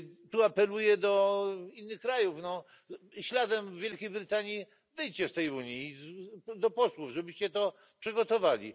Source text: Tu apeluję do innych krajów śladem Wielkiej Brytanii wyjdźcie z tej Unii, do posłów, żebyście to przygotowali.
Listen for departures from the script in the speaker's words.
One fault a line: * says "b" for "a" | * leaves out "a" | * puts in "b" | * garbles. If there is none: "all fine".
all fine